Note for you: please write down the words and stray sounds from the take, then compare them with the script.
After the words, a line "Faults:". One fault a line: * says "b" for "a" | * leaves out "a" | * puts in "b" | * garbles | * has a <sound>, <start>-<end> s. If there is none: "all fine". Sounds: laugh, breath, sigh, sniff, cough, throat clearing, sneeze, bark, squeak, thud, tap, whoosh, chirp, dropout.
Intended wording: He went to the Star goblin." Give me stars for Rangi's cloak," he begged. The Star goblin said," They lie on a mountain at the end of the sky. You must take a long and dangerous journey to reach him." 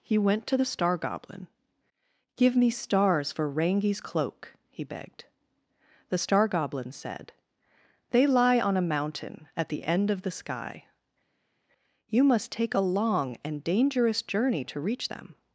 He went to the Star goblin." Give me stars for Rangi's cloak," he begged. The Star goblin said," They lie on a mountain at the end of the sky. You must take a long and dangerous journey to reach them."
Faults:
* says "them" for "him"